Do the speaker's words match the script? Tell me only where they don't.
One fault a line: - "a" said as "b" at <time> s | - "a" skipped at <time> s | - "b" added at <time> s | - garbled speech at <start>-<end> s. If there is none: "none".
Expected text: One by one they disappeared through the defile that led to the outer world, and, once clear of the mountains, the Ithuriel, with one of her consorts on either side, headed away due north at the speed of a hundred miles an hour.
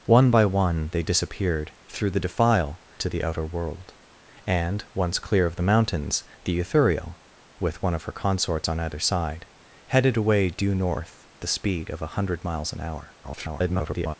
- "that led" skipped at 2.8 s
- "at" skipped at 11.3 s
- garbled speech at 13.2-14.2 s